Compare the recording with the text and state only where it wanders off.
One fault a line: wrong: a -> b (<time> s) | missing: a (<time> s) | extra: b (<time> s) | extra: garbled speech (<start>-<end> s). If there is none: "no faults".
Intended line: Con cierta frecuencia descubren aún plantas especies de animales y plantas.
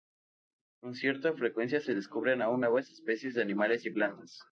extra: se (1.8 s)
wrong: plantas -> nuevas (2.6 s)